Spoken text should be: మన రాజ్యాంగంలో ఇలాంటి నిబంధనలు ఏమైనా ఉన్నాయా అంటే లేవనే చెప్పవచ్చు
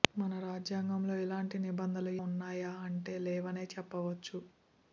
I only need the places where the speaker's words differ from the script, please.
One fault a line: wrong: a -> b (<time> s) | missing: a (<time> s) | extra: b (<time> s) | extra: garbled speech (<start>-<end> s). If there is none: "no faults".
missing: ఏమైనా (2.1 s)